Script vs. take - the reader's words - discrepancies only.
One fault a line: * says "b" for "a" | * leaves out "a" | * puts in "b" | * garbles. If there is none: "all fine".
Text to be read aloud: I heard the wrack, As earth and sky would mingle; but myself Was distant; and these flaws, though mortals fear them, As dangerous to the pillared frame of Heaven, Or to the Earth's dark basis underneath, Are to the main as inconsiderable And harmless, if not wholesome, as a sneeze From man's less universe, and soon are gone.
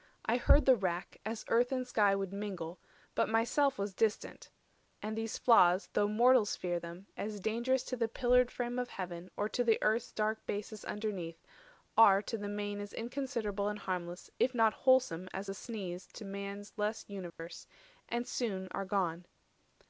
* says "To" for "From"